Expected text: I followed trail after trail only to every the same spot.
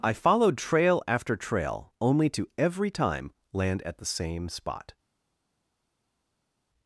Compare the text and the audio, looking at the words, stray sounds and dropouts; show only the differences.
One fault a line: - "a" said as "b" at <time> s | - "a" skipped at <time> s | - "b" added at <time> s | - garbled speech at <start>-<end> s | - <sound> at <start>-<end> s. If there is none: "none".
- "time land at" added at 2.9 s